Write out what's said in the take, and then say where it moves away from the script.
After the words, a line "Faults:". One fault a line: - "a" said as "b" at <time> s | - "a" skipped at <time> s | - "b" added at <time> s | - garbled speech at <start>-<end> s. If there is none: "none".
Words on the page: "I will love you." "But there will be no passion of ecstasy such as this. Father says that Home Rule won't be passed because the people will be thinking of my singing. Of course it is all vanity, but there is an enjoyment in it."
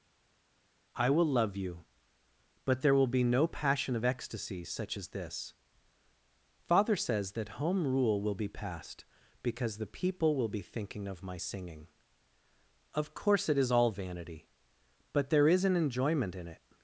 "I will love you." "But there will be no passion of ecstasy such as this. Father says that Home Rule will be passed because the people will be thinking of my singing. Of course it is all vanity, but there is an enjoyment in it."
Faults:
- "won't" said as "will" at 8.2 s